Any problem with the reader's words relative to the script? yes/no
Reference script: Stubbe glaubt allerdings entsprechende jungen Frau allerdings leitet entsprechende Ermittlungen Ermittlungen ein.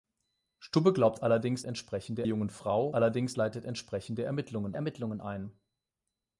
no